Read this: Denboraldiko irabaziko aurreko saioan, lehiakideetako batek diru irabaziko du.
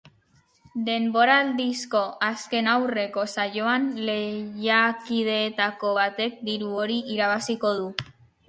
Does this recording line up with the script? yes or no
no